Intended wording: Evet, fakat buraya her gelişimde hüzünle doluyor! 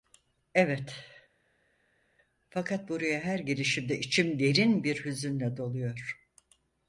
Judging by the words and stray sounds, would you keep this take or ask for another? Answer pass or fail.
fail